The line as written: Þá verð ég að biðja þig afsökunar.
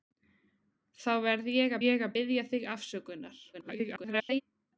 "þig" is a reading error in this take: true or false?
false